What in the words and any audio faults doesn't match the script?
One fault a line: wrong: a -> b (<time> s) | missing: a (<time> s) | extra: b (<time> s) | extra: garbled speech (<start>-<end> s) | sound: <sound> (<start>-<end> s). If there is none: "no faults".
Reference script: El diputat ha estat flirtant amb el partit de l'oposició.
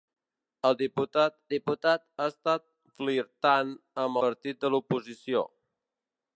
extra: diputat (1.5 s)
missing: el (4.2 s)